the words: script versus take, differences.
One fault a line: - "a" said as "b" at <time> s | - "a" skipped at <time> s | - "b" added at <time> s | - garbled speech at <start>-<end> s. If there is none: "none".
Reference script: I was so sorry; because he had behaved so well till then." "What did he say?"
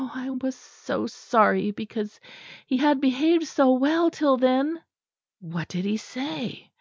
none